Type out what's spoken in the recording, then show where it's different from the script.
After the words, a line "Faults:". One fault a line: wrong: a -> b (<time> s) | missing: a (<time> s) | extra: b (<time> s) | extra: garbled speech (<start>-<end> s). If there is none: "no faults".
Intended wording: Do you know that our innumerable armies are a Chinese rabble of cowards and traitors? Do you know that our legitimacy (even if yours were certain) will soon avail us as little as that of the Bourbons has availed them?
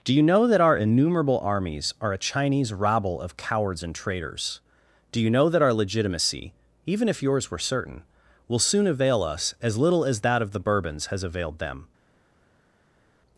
Do you know that our innumerable armies are a Chinese rabble of cowards and traitors? Do you know that our legitimacy (even if yours were certain) will soon avail us as little as that of the Bourbons has availed them?
Faults:
no faults